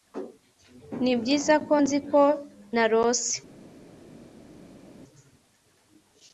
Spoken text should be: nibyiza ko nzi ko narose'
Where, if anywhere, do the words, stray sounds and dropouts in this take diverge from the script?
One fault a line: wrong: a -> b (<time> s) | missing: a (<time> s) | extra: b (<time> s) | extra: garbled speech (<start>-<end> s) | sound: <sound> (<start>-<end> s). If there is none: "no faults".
no faults